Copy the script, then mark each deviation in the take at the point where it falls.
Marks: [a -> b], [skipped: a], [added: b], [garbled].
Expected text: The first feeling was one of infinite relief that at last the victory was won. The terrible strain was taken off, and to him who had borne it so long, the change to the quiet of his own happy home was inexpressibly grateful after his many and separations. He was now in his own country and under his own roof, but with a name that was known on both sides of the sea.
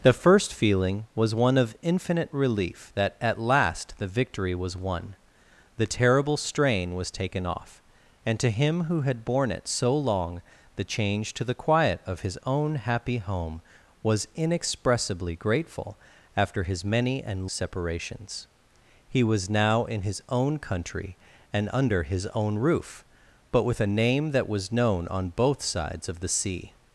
The first feeling was one of infinite relief that at last the victory was won. The terrible strain was taken off, and to him who had borne it so long, the change to the quiet of his own happy home was inexpressibly grateful after his many and separations. He was now in his own country and under his own roof, but with a name that was known on both sides of the sea.